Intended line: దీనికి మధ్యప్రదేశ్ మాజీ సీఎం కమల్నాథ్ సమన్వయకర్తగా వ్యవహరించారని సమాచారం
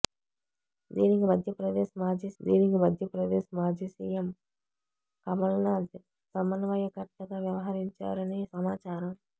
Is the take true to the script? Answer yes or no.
no